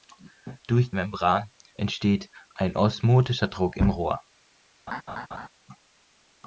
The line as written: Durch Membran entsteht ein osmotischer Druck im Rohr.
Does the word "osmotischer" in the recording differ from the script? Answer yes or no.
no